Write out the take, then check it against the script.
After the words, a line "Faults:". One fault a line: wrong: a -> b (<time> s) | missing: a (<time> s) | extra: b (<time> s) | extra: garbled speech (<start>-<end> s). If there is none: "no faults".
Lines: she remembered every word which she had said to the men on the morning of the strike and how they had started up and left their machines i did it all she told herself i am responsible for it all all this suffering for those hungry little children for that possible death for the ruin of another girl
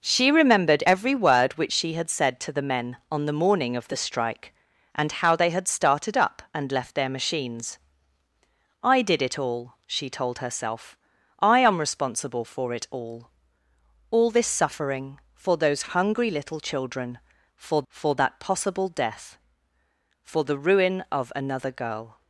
she remembered every word which she had said to the men on the morning of the strike and how they had started up and left their machines i did it all she told herself i am responsible for it all all this suffering for those hungry little children for for that possible death for the ruin of another girl
Faults:
extra: for (17.9 s)